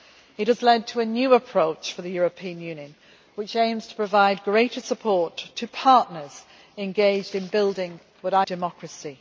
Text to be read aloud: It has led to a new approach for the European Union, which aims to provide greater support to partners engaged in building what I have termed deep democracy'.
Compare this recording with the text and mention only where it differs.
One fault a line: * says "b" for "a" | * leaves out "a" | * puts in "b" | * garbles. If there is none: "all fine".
* leaves out "have termed deep"